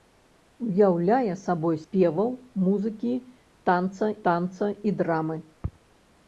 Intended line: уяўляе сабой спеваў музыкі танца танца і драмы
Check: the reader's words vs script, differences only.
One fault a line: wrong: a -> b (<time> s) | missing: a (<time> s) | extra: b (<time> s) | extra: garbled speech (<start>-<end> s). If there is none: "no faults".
no faults